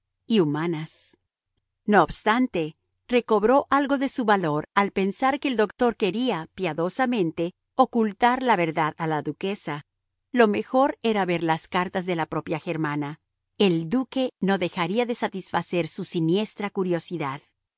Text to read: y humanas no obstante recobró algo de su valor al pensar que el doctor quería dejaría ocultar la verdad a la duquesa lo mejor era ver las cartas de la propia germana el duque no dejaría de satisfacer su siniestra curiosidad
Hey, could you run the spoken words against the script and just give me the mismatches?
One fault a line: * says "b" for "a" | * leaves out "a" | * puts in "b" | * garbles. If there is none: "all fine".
* says "piadosamente" for "dejaría"